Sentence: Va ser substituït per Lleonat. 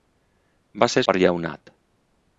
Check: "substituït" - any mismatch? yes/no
yes